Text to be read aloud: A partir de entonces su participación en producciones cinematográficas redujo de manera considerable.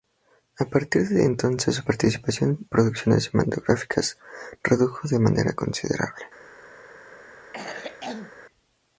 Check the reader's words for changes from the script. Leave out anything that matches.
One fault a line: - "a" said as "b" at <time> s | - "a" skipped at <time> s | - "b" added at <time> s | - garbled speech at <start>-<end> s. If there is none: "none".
none